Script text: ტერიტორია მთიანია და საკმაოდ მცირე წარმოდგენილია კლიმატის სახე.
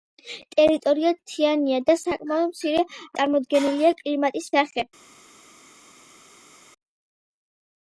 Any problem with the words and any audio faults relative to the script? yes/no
no